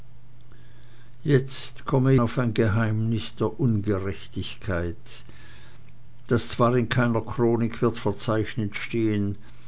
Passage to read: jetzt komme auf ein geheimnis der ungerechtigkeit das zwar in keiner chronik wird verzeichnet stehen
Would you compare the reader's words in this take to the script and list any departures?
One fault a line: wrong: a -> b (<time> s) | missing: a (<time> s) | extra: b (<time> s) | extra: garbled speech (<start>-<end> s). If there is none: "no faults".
no faults